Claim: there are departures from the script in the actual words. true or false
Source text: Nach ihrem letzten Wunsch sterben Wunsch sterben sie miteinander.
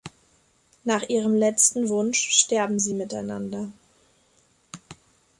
true